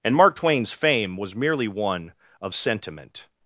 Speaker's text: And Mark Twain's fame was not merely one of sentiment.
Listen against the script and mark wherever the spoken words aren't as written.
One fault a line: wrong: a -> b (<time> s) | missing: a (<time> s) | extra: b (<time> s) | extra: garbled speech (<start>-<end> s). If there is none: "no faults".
missing: not (1.4 s)